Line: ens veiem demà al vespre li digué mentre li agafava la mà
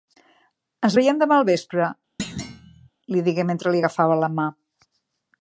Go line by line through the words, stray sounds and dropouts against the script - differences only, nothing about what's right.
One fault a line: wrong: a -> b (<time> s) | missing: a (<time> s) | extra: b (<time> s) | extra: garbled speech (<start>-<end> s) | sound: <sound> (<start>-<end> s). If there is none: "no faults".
sound: thud (2.2-2.9 s)